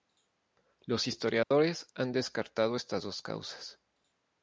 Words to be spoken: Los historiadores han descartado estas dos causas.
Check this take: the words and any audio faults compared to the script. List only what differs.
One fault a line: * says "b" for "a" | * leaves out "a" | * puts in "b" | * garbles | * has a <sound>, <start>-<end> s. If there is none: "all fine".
* has a dropout, 1.4-1.5 s